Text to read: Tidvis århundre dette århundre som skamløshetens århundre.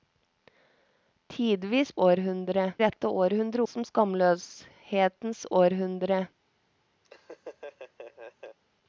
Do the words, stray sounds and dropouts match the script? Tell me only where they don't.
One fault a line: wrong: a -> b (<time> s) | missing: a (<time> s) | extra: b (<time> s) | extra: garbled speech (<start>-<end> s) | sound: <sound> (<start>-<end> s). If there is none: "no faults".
sound: laugh (7.0-8.6 s)